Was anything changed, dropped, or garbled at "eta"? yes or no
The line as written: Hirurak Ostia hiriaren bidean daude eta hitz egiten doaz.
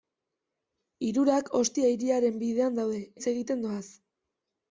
yes